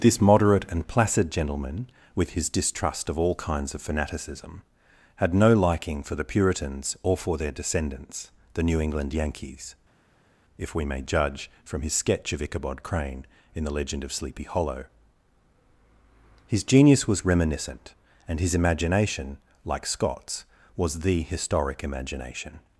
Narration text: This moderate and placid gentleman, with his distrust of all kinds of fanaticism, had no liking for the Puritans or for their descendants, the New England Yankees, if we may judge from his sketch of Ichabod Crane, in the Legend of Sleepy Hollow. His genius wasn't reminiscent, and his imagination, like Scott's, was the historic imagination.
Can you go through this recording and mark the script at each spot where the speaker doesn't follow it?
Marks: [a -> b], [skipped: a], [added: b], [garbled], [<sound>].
This moderate and placid gentleman, with his distrust of all kinds of fanaticism, had no liking for the Puritans or for their descendants, the New England Yankees, if we may judge from his sketch of Ichabod Crane, in the Legend of Sleepy Hollow. His genius [wasn't -> was] reminiscent, and his imagination, like Scott's, was the historic imagination.